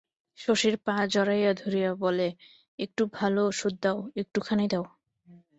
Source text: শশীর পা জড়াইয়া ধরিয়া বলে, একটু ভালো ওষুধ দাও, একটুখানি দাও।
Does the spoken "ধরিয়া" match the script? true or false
true